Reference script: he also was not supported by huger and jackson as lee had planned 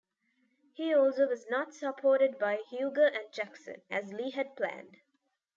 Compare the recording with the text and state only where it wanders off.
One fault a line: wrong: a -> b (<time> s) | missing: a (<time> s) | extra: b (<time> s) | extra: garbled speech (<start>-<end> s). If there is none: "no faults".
no faults